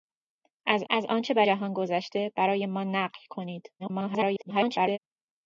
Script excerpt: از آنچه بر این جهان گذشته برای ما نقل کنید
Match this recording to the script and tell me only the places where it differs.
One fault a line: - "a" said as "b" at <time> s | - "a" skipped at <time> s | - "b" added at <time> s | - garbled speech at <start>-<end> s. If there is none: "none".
- "از" added at 0.9 s
- "این" skipped at 1.4 s
- garbled speech at 3.8-5.0 s